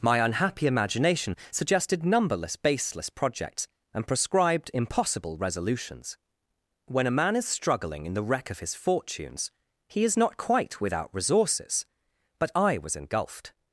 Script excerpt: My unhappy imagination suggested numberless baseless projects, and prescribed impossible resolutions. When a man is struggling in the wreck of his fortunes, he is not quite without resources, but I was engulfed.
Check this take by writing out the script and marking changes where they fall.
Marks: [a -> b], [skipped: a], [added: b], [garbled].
My unhappy imagination suggested numberless baseless projects, and prescribed impossible resolutions. When a man is struggling in the wreck of his fortunes, he is not quite without resources, but I was engulfed.